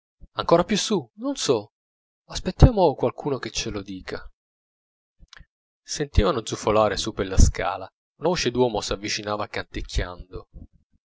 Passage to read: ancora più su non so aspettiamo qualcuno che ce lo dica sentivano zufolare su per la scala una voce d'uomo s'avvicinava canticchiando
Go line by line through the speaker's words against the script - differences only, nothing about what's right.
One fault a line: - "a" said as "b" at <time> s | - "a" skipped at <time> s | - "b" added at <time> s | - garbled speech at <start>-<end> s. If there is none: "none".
none